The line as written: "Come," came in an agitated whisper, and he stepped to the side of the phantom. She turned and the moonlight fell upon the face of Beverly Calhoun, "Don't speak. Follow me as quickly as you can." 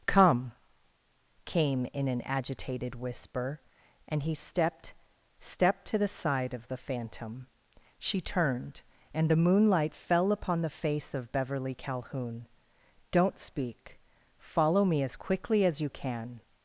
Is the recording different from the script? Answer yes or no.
yes